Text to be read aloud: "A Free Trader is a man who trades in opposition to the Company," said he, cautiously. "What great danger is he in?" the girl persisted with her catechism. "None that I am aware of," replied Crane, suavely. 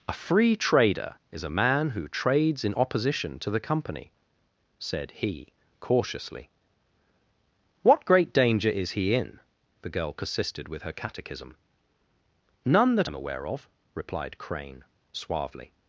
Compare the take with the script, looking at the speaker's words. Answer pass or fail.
fail